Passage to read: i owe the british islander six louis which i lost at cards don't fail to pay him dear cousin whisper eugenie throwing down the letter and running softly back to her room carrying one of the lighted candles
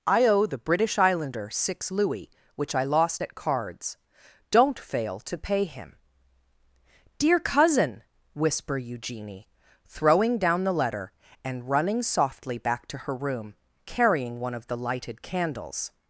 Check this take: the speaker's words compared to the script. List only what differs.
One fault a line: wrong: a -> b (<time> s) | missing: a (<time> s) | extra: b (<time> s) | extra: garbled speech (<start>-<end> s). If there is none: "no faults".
no faults